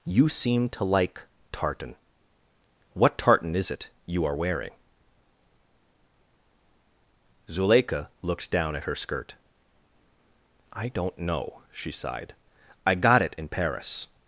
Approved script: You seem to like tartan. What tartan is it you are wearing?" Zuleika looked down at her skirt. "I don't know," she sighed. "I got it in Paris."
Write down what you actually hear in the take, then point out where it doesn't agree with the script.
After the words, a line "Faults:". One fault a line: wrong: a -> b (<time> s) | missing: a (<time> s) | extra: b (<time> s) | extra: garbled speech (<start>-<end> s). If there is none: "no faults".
You seem to like tartan. What tartan is it you are wearing?" Zuleika looked down at her skirt. "I don't know," she sighed. "I got it in Paris."
Faults:
no faults